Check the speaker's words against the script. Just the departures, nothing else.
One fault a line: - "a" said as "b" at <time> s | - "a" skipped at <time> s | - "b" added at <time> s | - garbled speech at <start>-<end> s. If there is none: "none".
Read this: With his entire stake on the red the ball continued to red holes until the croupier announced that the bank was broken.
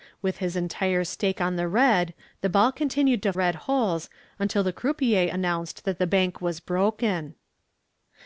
none